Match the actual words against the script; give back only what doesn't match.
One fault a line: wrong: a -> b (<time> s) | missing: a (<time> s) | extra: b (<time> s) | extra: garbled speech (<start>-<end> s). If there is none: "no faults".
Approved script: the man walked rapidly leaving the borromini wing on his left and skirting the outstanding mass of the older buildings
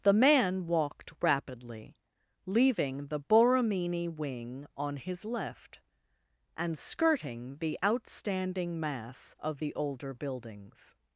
no faults